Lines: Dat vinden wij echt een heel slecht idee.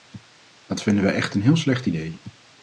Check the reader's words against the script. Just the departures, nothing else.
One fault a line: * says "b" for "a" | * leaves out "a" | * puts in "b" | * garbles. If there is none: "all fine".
all fine